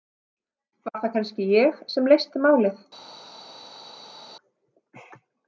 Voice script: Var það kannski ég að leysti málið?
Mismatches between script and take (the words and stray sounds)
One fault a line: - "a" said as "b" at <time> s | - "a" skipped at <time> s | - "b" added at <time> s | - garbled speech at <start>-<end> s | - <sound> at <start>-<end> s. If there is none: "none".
- "að" said as "sem" at 1.9 s